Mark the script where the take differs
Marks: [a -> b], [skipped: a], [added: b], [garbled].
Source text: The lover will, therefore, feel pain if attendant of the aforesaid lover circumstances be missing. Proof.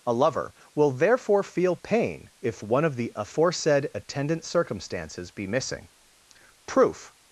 [The -> A] lover will, therefore, feel pain if [attendant -> one] of the aforesaid [lover -> attendant] circumstances be missing. Proof.